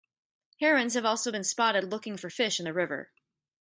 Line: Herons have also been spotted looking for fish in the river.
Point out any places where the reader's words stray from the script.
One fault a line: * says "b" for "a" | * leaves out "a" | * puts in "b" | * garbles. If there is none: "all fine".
all fine